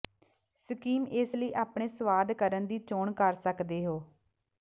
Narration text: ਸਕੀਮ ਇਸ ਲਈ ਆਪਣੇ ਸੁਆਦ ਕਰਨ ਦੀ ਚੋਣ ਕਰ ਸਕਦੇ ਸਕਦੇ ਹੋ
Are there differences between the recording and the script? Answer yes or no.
yes